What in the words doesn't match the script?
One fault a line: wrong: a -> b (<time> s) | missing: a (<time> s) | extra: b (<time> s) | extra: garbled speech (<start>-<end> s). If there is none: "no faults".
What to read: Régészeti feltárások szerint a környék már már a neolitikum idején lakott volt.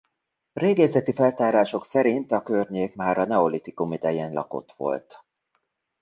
missing: már (3.2 s)